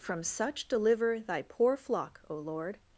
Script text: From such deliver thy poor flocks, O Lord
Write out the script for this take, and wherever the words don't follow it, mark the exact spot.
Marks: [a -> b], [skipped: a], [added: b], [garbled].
From such deliver thy poor [flocks, -> flock] O Lord